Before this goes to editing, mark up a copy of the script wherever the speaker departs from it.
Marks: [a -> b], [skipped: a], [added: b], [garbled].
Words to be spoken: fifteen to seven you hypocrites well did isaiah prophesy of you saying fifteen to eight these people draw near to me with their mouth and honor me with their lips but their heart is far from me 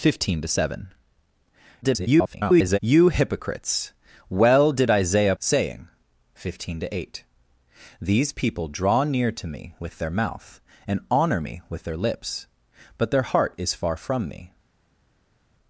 fifteen to seven [garbled] you hypocrites well did isaiah [skipped: prophesy of you] saying fifteen to eight these people draw near to me with their mouth and honor me with their lips but their heart is far from me